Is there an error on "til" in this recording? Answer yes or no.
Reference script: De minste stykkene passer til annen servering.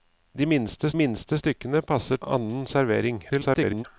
yes